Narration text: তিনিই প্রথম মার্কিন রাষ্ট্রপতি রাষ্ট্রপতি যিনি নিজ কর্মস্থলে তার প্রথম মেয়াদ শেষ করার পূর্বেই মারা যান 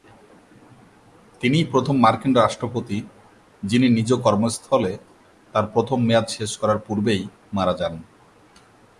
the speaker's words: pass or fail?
fail